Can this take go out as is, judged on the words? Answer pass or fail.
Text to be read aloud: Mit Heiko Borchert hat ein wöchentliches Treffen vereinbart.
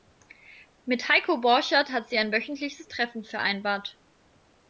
fail